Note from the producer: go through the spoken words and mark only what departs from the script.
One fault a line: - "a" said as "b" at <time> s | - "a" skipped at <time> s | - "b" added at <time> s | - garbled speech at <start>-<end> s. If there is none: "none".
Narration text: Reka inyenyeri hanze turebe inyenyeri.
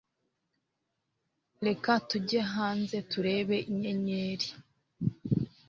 - "inyenyeri" said as "tujye" at 2.1 s